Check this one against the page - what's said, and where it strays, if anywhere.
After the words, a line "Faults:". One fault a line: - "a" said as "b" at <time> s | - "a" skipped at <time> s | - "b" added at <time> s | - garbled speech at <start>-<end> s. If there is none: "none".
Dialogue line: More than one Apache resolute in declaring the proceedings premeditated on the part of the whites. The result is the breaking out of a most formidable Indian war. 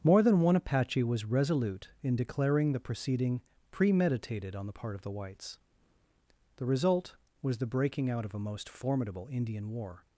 More than one Apache was resolute in declaring the proceeding premeditated on the part of the whites. The result was the breaking out of a most formidable Indian war.
Faults:
- "was" added at 1.0 s
- "proceedings" said as "proceeding" at 2.8 s
- "is" said as "was" at 7.4 s